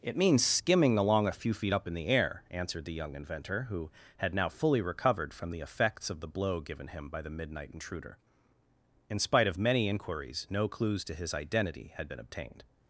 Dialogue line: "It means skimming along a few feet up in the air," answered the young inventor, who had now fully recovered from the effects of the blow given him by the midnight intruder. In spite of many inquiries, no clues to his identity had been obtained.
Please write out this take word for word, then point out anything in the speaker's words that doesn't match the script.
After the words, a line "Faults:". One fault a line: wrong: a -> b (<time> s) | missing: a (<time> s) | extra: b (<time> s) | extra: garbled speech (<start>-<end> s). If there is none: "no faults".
"It means skimming along a few feet up in the air," answered the young inventor, who had now fully recovered from the effects of the blow given him by the midnight intruder. In spite of many inquiries, no clues to his identity had been obtained.
Faults:
no faults